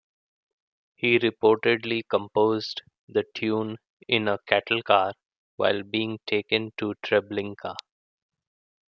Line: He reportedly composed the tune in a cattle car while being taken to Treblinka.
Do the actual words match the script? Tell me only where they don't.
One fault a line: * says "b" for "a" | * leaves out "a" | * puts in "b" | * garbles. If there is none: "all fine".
all fine